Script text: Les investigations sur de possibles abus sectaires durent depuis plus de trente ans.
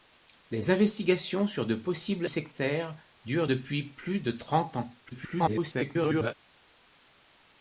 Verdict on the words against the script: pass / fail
fail